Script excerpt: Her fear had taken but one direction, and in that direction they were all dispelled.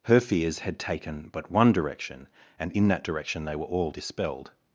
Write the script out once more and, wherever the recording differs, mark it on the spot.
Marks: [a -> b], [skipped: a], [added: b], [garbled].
Her [fear -> fears] had taken but one direction, and in that direction they were all dispelled.